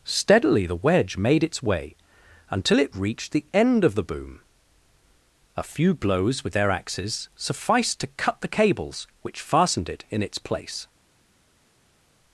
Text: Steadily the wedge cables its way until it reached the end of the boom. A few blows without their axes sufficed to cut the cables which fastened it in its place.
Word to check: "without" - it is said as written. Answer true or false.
false